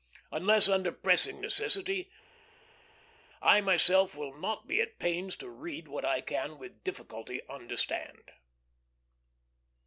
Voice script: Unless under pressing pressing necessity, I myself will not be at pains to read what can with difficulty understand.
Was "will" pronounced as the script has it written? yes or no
yes